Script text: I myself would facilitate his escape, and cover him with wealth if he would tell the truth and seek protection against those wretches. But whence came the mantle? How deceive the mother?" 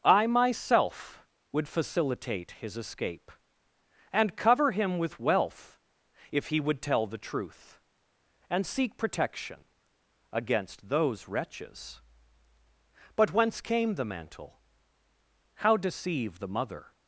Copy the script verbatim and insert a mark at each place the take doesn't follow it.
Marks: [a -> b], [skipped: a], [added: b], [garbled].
I myself would facilitate his escape, and cover him with wealth if he would tell the truth and seek protection against those wretches. But whence came the mantle? How deceive the mother?"